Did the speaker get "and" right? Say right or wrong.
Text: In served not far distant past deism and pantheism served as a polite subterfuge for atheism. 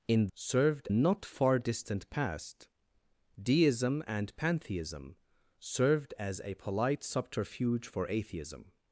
right